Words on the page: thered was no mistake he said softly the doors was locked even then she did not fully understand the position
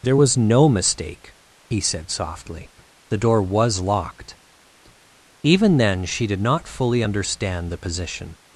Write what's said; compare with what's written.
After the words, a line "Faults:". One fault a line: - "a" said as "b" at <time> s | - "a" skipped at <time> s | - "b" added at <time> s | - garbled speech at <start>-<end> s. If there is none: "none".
there was no mistake he said softly the door was locked even then she did not fully understand the position
Faults:
- "thered" said as "there" at 0.0 s
- "doors" said as "door" at 3.2 s